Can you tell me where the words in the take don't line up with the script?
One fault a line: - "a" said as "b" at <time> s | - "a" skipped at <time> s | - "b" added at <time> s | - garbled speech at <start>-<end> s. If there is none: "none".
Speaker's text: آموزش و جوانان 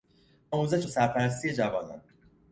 - "سرپرستی" added at 0.9 s